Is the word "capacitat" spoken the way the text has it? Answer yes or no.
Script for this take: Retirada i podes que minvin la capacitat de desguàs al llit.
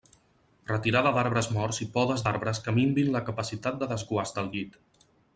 yes